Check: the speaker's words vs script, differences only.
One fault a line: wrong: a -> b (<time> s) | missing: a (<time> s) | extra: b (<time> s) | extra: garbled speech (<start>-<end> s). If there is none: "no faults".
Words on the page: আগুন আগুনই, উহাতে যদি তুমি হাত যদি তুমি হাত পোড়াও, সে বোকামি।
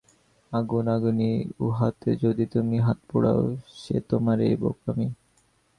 missing: যদি তুমি হাত (3.0 s)
extra: তোমারই (4.1 s)